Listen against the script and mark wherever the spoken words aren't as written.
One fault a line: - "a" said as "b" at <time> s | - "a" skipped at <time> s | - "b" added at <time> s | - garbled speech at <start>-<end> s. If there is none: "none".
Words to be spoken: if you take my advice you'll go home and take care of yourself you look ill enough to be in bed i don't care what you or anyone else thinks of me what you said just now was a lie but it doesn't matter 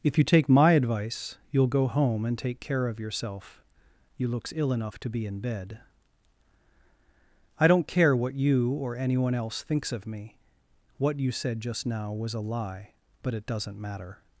- "look" said as "looks" at 4.3 s